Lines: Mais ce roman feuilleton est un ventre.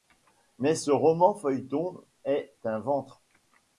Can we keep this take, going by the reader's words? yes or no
yes